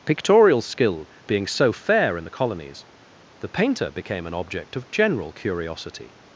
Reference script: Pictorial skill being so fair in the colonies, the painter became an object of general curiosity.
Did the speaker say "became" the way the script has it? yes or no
yes